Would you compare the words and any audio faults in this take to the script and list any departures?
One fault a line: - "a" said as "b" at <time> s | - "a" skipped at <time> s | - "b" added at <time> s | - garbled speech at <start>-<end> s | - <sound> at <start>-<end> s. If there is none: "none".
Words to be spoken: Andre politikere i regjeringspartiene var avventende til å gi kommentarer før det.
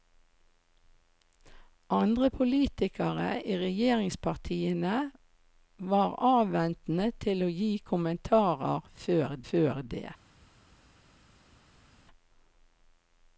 - "før" added at 9.5 s